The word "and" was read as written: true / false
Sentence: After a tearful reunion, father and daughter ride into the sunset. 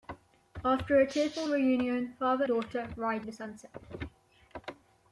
false